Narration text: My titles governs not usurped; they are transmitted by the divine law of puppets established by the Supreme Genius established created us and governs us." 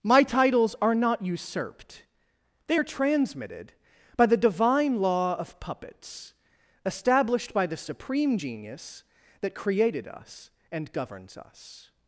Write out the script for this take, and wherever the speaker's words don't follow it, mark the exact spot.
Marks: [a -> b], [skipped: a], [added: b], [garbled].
My titles [governs -> are] not usurped; they are transmitted by the divine law of puppets established by the Supreme Genius [established -> that] created us and governs us."